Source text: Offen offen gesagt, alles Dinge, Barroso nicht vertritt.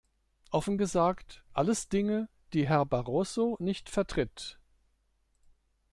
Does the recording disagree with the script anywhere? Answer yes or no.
yes